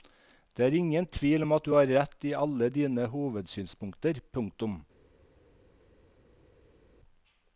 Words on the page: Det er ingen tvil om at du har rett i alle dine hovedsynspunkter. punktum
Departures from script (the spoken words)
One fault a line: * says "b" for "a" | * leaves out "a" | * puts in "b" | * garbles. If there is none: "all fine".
all fine